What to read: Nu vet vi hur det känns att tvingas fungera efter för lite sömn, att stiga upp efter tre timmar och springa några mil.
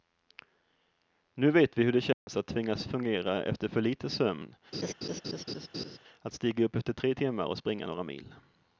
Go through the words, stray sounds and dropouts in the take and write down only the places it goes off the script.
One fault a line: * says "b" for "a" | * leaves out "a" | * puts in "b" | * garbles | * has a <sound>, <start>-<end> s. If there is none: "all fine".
* has a dropout, 2.1-2.3 s
* has a laugh, 4.7-6.0 s